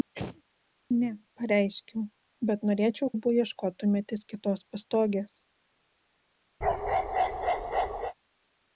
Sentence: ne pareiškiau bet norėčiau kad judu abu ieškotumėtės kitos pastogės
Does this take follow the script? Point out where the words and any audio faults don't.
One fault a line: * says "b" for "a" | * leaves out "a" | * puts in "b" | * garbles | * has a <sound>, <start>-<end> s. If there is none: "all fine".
* has a sneeze, 0.1-0.4 s
* leaves out "kad judu"
* has a bark, 6.6-8.1 s